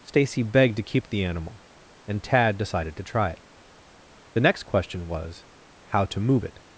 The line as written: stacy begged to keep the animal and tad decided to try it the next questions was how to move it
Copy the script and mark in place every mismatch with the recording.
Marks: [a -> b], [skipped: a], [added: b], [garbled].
stacy begged to keep the animal and tad decided to try it the next [questions -> question] was how to move it